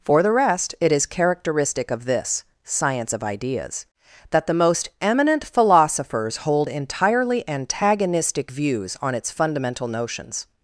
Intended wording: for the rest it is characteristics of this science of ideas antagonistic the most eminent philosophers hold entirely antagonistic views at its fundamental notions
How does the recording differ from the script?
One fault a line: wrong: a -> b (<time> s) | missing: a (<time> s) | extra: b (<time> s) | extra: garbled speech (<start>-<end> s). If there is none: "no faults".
wrong: characteristics -> characteristic (1.1 s)
wrong: antagonistic -> that (4.3 s)
wrong: at -> on (9.0 s)